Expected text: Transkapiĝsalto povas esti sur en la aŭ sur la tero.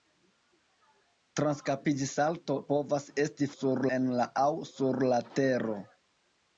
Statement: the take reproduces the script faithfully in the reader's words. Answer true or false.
true